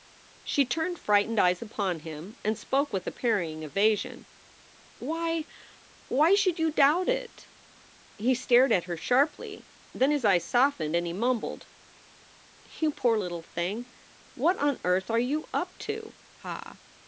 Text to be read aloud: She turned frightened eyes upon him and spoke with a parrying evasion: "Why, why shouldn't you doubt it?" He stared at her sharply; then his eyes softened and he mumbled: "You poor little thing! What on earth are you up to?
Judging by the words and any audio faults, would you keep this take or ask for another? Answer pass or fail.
fail